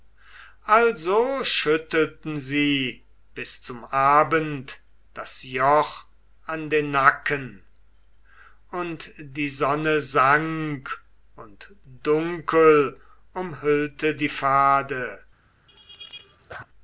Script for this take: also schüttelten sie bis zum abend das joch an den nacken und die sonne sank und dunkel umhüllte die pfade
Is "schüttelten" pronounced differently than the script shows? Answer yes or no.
no